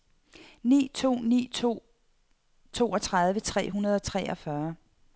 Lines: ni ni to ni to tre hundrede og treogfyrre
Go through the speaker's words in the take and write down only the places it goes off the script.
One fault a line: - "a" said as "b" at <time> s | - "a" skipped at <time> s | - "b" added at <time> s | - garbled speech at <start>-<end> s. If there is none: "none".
- "ni" skipped at 0.9 s
- "toogtredive" added at 2.7 s